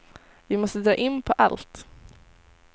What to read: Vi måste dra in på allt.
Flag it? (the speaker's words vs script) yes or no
no